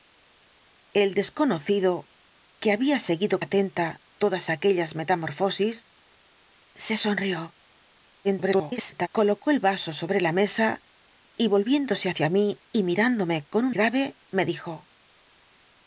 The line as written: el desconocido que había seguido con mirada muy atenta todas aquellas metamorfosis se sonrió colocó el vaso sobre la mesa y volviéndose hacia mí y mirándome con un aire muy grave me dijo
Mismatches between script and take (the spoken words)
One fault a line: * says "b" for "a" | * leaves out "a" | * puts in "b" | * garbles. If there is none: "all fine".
* leaves out "con mirada muy"
* garbles
* leaves out "aire muy"